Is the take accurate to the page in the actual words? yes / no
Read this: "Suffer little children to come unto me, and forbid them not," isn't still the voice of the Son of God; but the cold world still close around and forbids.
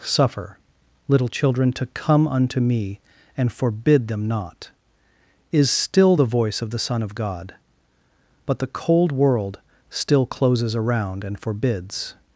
no